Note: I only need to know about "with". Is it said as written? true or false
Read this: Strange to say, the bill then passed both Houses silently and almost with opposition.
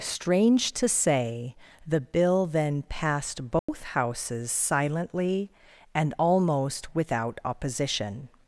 false